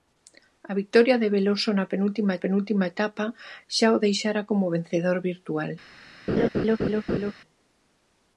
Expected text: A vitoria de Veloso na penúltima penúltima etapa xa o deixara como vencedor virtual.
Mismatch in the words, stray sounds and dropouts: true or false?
true